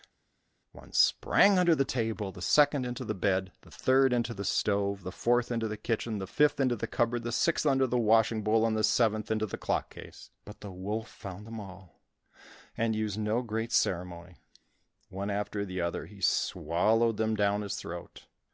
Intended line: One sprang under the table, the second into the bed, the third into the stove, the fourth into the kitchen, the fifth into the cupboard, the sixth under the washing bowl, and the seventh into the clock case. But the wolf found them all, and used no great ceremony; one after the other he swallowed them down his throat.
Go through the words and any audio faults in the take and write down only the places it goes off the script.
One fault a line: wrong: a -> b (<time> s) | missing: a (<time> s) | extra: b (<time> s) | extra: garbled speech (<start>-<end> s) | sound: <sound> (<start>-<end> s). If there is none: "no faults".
no faults